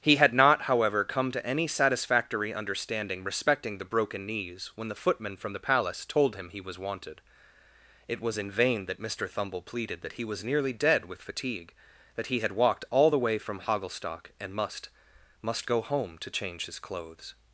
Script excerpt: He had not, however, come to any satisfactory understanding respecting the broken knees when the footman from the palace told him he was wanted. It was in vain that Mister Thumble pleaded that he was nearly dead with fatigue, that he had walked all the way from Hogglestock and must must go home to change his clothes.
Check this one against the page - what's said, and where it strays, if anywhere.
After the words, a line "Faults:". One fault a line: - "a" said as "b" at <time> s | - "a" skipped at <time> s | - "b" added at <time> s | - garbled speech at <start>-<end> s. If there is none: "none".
He had not, however, come to any satisfactory understanding respecting the broken knees when the footman from the palace told him he was wanted. It was in vain that Mister Thumble pleaded that he was nearly dead with fatigue, that he had walked all the way from Hogglestock and must must go home to change his clothes.
Faults:
none